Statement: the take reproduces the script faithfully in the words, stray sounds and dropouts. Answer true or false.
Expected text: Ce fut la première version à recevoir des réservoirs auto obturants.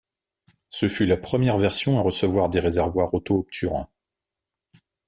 true